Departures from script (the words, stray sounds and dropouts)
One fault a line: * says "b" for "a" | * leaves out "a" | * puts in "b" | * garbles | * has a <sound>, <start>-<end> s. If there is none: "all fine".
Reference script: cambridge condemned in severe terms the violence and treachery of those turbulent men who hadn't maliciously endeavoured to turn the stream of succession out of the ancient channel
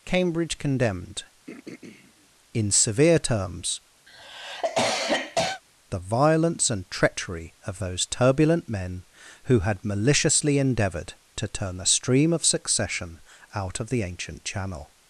* has a throat clearing, 1.5-2.3 s
* has a cough, 4.1-5.6 s
* says "had" for "hadn't"